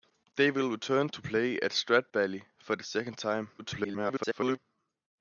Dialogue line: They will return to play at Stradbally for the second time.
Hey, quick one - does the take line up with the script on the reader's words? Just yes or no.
no